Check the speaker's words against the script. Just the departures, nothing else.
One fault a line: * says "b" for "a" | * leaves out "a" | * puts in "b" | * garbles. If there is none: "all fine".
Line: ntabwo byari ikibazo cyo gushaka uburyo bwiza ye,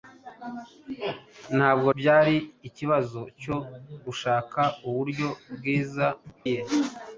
all fine